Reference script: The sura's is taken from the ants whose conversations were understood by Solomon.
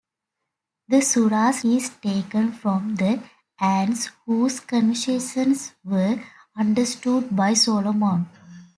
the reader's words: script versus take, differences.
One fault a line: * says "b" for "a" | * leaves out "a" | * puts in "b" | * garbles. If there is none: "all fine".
all fine